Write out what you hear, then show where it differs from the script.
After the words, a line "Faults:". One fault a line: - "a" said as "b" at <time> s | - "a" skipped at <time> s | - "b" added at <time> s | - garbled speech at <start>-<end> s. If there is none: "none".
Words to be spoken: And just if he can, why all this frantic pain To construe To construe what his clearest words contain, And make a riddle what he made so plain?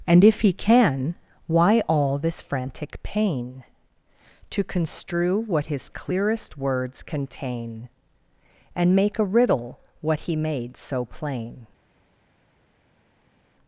And if he can, why all this frantic pain To construe what his clearest words contain, And make a riddle what he made so plain?
Faults:
- "just" skipped at 0.2 s
- "To construe" skipped at 5.4 s